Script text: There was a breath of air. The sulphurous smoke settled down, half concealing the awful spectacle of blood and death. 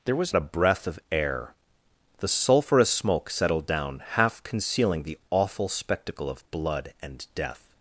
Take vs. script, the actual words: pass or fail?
pass